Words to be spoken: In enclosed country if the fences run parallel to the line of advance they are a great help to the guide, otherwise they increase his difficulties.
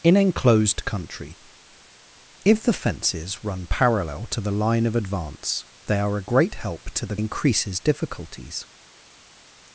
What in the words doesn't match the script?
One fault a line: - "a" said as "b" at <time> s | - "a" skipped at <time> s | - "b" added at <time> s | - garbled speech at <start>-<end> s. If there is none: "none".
- "guide otherwise they" skipped at 7.2 s